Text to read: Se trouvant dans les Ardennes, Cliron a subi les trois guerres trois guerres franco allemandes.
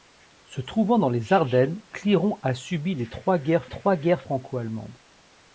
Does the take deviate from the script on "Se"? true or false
false